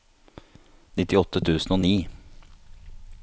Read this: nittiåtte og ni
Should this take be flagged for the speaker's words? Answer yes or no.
yes